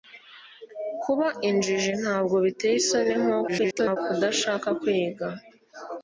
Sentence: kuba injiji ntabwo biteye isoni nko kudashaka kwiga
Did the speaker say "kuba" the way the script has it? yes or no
yes